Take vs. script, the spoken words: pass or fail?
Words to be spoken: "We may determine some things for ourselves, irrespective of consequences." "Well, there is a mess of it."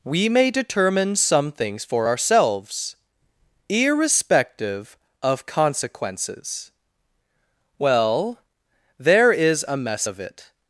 pass